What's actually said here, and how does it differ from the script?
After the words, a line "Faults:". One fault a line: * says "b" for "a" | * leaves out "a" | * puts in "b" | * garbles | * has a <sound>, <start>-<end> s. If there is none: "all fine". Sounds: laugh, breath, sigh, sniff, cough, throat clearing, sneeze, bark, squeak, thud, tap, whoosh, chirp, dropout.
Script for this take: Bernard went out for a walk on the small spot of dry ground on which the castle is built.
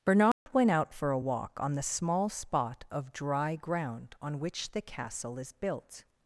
Bernard went out for a walk on the small spot of dry ground on which the castle is built.
Faults:
* has a dropout, 0.3-0.5 s